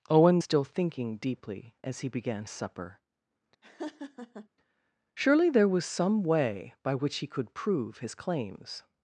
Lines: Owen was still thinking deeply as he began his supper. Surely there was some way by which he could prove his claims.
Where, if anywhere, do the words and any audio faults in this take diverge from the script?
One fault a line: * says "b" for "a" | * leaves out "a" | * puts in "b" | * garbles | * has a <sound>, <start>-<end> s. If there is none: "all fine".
* leaves out "was"
* leaves out "his"
* has a laugh, 3.6-4.5 s